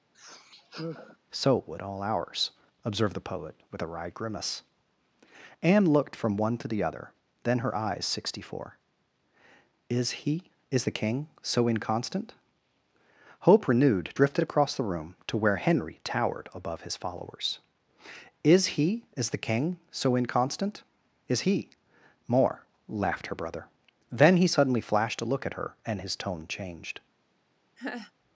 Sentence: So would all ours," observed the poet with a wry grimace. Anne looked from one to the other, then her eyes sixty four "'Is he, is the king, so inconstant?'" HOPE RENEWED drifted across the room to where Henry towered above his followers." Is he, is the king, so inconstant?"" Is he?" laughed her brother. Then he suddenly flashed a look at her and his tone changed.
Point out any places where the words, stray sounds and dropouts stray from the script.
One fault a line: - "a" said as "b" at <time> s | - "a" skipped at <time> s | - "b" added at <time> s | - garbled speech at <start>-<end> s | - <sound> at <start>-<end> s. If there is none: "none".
- sigh at 0.1-1.2 s
- "more" added at 22.3 s
- laugh at 27.8-28.1 s